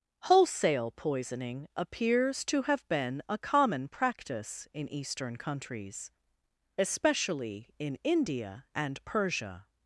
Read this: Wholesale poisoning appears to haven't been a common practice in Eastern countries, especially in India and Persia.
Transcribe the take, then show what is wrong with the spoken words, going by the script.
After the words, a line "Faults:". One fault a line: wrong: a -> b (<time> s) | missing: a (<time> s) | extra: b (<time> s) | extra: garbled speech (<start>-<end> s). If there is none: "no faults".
Wholesale poisoning appears to have been a common practice in Eastern countries, especially in India and Persia.
Faults:
wrong: haven't -> have (2.6 s)